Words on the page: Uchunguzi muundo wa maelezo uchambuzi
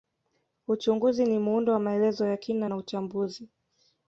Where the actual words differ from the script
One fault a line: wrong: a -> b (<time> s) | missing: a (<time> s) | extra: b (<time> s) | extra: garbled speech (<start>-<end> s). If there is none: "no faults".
extra: ni (1.2 s)
extra: ya kina na (2.3 s)